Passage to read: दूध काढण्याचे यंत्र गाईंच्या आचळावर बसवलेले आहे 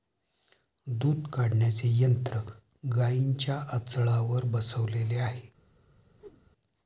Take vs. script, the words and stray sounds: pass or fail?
fail